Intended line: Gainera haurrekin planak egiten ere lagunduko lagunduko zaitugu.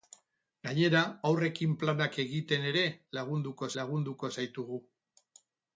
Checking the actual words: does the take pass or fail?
pass